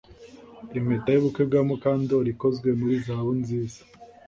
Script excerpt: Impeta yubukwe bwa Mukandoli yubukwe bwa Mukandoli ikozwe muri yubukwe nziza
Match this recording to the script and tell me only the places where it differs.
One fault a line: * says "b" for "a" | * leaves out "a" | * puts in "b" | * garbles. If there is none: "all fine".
* leaves out "yubukwe bwa Mukandoli"
* says "zahabu" for "yubukwe"